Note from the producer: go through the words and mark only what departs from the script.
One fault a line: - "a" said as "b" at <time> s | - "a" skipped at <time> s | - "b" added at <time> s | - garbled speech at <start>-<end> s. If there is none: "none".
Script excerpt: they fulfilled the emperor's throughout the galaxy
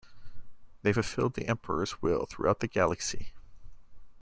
- "will" added at 2.0 s